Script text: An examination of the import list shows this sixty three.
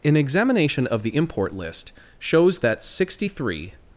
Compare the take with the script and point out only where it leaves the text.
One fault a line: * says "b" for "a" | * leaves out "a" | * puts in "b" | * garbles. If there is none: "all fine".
* says "that" for "this"